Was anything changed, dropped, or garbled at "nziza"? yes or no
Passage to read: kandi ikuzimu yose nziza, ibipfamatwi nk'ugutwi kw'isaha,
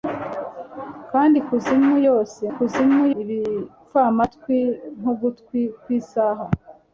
yes